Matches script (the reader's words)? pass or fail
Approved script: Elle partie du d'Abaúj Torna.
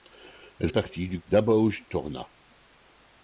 pass